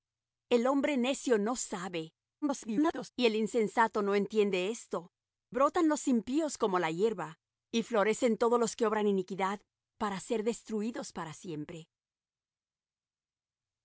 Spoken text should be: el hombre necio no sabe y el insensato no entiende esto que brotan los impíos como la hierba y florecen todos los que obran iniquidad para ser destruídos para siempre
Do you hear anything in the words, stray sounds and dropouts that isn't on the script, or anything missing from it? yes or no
yes